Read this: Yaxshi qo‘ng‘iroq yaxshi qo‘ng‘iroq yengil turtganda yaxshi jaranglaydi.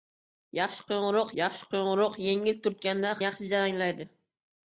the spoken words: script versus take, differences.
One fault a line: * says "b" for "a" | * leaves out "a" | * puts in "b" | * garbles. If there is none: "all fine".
all fine